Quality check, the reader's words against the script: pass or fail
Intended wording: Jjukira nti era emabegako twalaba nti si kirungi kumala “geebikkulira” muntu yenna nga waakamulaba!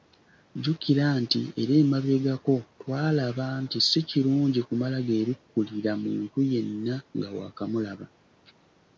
pass